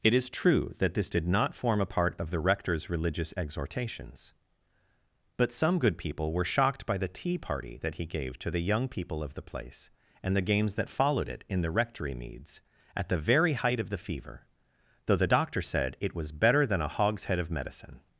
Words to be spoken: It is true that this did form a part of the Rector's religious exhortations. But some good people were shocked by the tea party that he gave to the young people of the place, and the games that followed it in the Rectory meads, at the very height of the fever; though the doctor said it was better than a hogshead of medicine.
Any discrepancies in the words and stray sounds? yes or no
yes